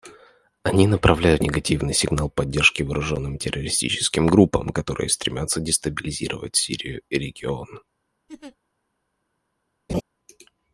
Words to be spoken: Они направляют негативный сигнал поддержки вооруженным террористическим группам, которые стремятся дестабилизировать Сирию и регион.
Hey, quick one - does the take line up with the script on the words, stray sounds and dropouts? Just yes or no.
no